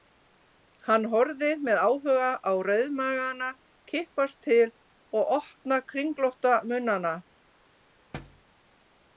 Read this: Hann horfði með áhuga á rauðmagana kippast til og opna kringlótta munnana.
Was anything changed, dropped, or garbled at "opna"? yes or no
no